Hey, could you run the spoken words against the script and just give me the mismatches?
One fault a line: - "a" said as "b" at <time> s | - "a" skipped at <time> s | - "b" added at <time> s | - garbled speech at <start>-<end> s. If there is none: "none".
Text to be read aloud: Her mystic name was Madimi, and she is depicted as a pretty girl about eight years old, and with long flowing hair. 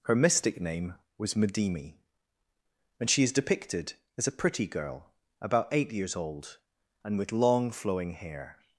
none